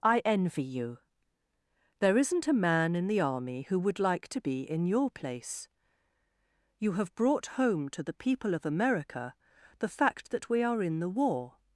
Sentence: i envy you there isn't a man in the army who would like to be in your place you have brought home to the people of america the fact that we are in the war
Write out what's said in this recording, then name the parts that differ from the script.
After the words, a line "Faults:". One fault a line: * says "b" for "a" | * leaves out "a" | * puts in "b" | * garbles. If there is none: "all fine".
i envy you there isn't a man in the army who would like to be in your place you have brought home to the people of america the fact that we are in the war
Faults:
all fine